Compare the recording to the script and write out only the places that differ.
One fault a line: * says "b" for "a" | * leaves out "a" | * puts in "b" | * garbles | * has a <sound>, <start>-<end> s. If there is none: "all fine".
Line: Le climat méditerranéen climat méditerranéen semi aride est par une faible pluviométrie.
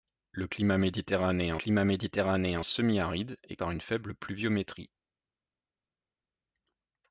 all fine